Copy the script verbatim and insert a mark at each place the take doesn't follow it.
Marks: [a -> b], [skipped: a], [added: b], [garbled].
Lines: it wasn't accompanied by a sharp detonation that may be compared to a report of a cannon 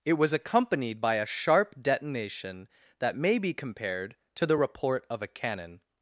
it [wasn't -> was] accompanied by a sharp detonation that may be compared to [a -> the] report of a cannon